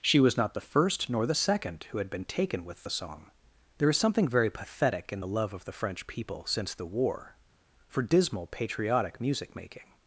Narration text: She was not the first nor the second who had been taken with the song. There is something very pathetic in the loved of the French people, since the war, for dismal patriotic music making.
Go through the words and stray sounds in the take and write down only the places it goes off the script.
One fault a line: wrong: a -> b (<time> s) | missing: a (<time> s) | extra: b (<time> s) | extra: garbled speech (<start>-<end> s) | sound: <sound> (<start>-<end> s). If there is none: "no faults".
wrong: loved -> love (5.3 s)